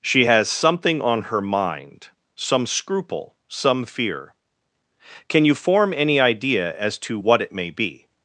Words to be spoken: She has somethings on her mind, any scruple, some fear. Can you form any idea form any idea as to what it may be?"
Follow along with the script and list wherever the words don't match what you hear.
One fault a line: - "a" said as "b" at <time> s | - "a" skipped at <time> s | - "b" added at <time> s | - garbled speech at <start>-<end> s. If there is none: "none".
- "somethings" said as "something" at 0.5 s
- "any" said as "some" at 2.4 s
- "form any idea" skipped at 6.8 s